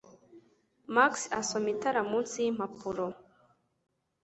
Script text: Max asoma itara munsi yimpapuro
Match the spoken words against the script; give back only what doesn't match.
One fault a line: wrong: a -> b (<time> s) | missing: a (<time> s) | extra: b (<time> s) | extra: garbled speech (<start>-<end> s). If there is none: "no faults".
no faults